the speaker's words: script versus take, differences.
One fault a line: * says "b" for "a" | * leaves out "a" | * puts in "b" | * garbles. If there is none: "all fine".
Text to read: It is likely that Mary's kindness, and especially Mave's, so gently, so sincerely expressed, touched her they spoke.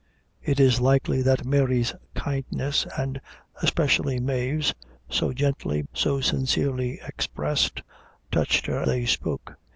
all fine